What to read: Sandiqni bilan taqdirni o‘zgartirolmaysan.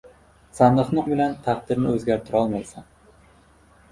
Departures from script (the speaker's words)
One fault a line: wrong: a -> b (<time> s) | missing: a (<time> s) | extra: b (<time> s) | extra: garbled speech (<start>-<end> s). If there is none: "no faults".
no faults